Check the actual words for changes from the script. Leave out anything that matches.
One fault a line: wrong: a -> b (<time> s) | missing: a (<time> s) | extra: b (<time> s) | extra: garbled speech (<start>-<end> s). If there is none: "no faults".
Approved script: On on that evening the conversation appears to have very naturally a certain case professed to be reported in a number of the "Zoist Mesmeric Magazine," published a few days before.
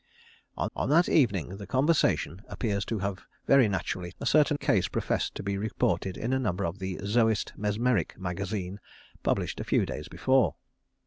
no faults